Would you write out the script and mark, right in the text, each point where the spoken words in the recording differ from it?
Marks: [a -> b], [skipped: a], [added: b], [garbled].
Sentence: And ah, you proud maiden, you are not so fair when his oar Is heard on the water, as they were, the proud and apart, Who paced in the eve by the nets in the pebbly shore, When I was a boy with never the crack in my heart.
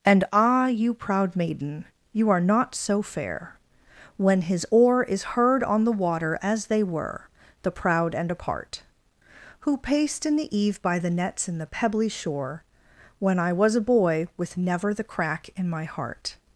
And ah, you proud maiden, you are not so fair when his oar Is heard on the water, as they were, the proud and apart, Who paced in the eve by the nets in the pebbly shore, When I was a boy with never the crack in my heart.